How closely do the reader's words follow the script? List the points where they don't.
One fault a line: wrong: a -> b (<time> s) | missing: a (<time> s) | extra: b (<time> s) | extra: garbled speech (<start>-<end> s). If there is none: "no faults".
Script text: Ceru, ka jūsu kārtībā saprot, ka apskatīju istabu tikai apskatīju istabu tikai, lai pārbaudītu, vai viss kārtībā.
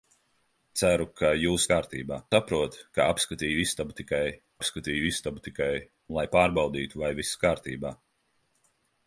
no faults